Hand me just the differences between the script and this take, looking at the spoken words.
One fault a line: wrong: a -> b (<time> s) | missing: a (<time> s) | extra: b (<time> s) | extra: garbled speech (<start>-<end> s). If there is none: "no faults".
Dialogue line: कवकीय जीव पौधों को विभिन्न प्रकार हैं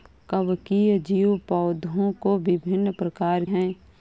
no faults